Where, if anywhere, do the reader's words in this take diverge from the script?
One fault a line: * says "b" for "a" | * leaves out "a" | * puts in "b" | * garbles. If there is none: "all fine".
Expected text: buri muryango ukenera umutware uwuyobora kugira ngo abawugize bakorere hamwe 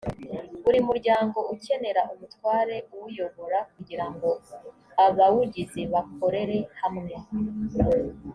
all fine